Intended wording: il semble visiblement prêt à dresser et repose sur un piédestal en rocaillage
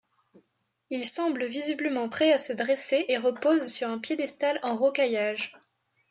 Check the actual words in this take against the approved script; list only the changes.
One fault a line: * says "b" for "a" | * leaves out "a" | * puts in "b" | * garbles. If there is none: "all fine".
* puts in "se"